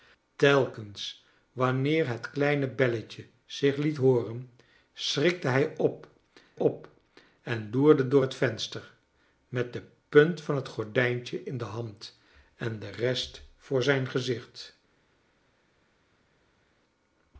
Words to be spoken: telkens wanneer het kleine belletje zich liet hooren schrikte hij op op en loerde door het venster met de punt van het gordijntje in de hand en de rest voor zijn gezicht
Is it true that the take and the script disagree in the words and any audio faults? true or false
false